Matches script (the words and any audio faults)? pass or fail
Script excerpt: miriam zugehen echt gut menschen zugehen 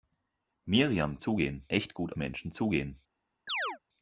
fail